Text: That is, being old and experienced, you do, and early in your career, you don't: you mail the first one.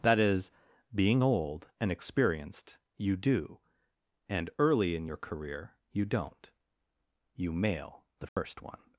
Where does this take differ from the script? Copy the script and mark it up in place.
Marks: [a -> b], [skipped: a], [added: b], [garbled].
That is, being old and experienced, you do, and early in your career, you don't: you mail the first one.